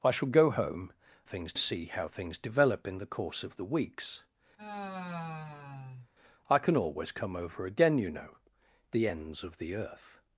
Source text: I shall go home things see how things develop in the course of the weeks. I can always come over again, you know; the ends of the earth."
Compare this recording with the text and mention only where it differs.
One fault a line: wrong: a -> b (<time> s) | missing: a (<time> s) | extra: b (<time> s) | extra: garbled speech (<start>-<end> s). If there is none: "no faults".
no faults